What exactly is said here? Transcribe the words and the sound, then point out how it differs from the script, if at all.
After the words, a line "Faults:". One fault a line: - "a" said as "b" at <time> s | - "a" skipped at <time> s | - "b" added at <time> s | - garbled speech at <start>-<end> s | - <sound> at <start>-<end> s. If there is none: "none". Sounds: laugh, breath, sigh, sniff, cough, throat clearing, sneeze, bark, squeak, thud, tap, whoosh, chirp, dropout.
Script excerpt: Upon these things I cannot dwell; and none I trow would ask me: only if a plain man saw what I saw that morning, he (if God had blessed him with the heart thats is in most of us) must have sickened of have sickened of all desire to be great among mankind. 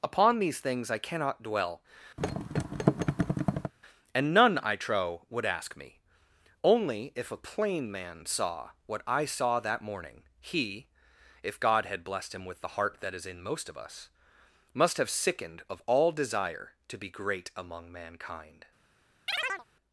Upon these things I cannot dwell; and none I trow would ask me: only if a plain man saw what I saw that morning, he (if God had blessed him with the heart that is in most of us) must have sickened of all desire to be great among mankind.
Faults:
- thud at 2.2-3.7 s
- "thats" said as "that" at 13.0 s
- "have sickened of" skipped at 15.8 s
- chirp at 19.3-19.7 s